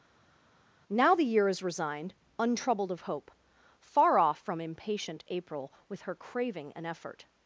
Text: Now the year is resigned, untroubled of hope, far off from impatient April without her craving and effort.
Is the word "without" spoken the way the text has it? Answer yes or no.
no